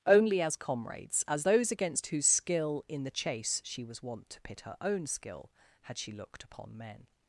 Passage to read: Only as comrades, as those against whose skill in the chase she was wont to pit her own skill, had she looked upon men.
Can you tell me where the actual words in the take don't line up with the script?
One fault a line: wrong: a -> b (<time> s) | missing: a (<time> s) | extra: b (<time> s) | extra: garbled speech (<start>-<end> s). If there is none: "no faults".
no faults